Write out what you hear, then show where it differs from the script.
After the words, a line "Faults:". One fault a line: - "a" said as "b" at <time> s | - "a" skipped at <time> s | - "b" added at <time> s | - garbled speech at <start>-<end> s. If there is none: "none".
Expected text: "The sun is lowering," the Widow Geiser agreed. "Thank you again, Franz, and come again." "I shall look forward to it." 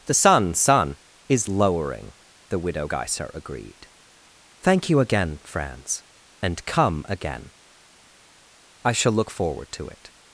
"The sun sun is lowering," the Widow Geiser agreed. "Thank you again, Franz, and come again." "I shall look forward to it."
Faults:
- "sun" added at 0.5 s